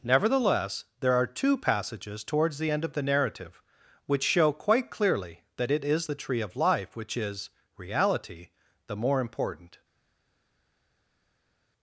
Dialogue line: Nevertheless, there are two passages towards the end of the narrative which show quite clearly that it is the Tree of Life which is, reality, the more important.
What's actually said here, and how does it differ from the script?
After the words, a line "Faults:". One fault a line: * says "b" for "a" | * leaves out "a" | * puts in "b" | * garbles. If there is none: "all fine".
Nevertheless, there are two passages towards the end of the narrative which show quite clearly that it is the Tree of Life which is, reality, the more important.
Faults:
all fine